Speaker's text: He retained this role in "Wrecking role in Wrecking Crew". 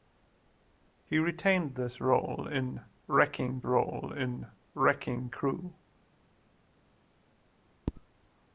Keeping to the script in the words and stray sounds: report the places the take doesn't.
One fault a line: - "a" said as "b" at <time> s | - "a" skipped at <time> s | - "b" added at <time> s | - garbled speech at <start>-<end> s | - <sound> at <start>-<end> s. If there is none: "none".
none